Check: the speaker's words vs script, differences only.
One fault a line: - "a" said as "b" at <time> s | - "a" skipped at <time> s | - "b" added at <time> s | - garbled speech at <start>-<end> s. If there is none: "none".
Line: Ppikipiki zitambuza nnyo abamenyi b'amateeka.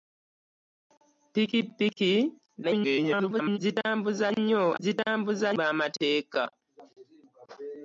- garbled speech at 2.6-3.6 s
- "abamenyi" said as "zitambuza" at 4.8 s